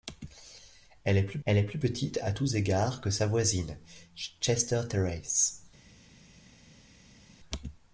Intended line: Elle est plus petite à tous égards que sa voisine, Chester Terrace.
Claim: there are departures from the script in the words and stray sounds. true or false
true